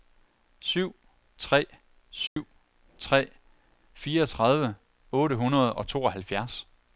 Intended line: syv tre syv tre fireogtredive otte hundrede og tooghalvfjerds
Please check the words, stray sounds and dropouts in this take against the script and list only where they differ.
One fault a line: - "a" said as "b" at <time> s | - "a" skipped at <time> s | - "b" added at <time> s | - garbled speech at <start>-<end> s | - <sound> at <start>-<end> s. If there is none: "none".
- dropout at 2.3-2.4 s